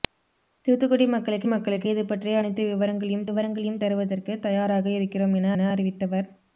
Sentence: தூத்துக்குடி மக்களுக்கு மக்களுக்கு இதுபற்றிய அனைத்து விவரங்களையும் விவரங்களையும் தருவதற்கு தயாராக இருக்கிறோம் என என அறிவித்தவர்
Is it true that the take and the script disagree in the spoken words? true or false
false